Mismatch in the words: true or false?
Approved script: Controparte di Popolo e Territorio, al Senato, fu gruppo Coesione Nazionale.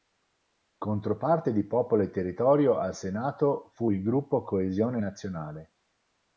true